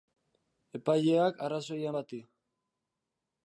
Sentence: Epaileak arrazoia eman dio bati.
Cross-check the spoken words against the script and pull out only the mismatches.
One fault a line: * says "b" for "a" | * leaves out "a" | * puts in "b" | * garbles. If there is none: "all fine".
* leaves out "eman dio"